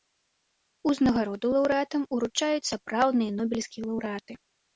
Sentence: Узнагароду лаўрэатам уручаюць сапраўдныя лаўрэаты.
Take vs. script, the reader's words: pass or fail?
fail